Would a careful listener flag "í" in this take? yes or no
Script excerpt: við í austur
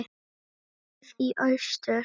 no